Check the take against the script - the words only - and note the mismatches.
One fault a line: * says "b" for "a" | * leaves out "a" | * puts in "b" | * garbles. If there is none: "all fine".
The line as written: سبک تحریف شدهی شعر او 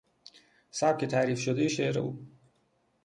all fine